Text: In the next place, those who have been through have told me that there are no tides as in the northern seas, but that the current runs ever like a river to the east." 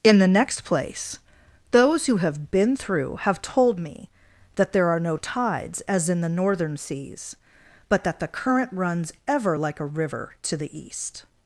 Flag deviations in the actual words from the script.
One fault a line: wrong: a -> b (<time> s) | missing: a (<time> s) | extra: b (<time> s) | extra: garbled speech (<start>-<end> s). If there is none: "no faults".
no faults